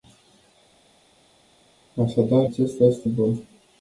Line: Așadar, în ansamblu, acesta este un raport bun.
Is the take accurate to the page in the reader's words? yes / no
no